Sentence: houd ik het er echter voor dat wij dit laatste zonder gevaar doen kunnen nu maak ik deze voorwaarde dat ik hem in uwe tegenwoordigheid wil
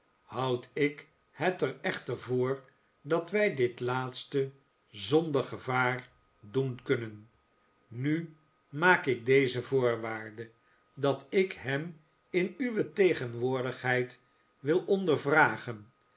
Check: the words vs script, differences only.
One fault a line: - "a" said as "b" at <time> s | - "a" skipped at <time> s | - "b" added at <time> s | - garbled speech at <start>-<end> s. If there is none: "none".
none